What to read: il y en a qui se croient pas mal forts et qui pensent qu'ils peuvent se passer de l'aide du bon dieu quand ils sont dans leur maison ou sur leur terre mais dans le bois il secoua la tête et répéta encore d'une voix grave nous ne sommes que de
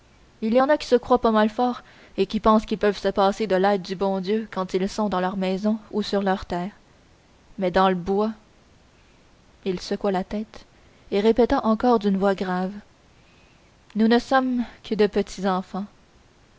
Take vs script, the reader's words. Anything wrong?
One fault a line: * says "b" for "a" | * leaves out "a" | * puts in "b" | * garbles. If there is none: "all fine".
all fine